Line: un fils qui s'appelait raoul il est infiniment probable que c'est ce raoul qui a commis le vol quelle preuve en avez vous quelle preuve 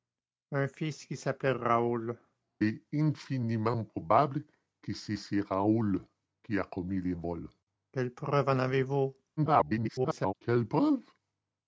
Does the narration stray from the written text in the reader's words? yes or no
yes